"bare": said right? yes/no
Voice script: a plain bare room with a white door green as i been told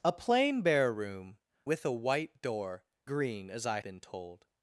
yes